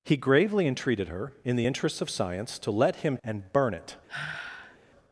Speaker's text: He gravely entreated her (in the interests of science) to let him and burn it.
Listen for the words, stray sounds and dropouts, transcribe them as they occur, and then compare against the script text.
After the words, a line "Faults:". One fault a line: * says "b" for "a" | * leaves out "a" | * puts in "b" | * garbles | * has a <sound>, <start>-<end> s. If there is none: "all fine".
He gravely entreated her (in the interests of science) to let him and burn it.
Faults:
* has a sigh, 4.1-4.8 s